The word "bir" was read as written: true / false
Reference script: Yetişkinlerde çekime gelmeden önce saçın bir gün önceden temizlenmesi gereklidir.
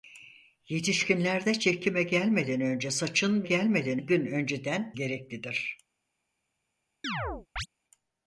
false